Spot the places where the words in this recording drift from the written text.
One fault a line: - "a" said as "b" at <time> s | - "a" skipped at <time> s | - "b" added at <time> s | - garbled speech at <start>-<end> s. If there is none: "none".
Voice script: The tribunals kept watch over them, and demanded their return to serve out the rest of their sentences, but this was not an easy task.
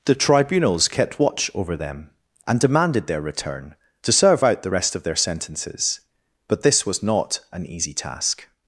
none